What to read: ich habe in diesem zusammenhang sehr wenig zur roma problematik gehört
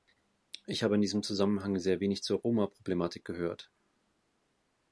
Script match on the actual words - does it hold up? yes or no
yes